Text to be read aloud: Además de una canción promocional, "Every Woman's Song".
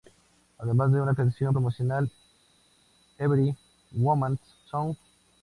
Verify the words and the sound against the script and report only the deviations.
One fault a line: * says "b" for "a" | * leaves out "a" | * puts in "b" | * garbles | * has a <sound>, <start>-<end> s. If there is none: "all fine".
all fine